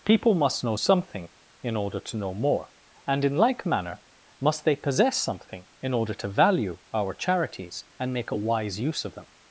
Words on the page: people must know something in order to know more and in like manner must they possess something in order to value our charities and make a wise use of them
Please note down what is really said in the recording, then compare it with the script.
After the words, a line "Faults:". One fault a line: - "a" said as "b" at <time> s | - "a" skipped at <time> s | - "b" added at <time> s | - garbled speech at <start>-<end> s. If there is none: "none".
people must know something in order to know more and in like manner must they possess something in order to value our charities and make a wise use of them
Faults:
none